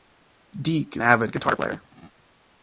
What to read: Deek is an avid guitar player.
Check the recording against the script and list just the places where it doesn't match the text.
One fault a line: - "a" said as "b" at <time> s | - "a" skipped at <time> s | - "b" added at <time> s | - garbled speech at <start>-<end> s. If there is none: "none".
- "an" skipped at 1.0 s